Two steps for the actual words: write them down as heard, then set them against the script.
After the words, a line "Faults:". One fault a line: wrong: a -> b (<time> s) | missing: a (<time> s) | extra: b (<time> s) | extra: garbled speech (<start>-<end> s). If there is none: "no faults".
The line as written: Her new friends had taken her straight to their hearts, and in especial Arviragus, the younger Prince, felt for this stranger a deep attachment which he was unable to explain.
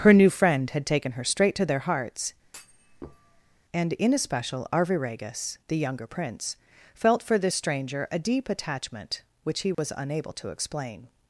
Her new friend had taken her straight to their hearts, and in especial Arviragus, the younger Prince, felt for this stranger a deep attachment which he was unable to explain.
Faults:
wrong: friends -> friend (0.3 s)